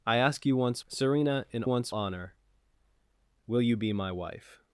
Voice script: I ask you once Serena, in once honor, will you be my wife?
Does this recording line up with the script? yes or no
yes